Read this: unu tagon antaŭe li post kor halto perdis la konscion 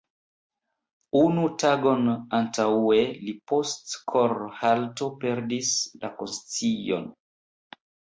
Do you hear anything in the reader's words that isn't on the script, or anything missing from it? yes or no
no